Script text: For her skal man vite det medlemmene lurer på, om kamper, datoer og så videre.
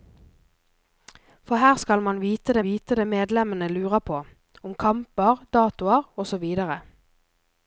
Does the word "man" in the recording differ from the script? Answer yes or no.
no